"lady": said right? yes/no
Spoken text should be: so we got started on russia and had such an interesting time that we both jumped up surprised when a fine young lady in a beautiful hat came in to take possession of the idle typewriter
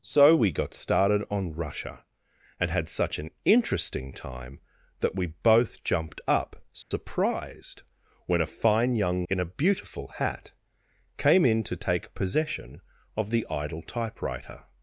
no